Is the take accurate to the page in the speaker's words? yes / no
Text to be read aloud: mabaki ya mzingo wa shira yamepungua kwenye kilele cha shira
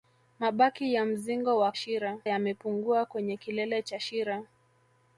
yes